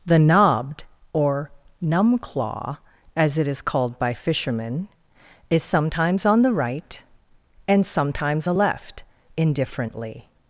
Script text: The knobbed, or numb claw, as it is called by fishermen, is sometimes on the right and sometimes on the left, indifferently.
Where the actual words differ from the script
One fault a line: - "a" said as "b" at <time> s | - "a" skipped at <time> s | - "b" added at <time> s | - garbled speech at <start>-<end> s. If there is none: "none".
- "on" skipped at 8.5 s